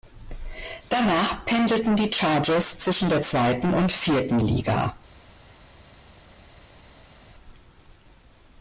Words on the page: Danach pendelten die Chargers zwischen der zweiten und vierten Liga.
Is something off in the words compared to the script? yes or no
no